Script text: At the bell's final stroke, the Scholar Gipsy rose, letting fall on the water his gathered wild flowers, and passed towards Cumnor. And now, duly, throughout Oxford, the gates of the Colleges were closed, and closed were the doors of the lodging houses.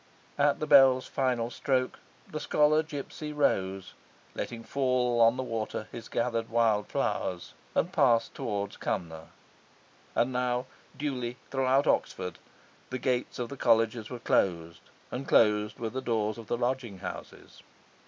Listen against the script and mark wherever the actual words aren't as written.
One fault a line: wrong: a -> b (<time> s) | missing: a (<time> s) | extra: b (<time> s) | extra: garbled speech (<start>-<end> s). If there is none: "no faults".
no faults